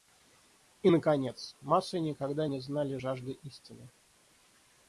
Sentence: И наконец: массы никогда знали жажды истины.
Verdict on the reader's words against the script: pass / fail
fail